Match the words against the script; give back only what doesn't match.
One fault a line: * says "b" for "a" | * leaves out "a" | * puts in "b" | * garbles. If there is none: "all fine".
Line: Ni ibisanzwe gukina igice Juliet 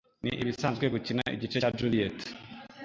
* puts in "cya"